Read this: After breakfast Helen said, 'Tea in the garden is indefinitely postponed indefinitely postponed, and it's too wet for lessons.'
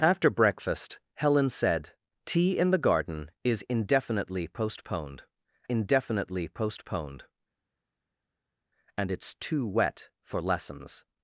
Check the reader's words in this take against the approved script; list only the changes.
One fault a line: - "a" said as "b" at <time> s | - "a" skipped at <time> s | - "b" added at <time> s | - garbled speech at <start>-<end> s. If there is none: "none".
none